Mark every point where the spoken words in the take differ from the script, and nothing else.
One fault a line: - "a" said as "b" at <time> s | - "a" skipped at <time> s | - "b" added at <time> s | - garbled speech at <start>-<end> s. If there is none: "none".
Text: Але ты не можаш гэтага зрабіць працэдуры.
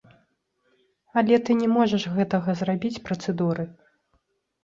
none